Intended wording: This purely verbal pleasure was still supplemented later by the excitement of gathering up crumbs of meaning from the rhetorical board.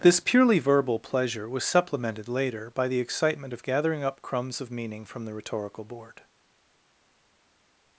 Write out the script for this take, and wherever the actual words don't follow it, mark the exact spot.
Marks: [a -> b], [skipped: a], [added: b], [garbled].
This purely verbal pleasure was [skipped: still] supplemented later by the excitement of gathering up crumbs of meaning from the rhetorical board.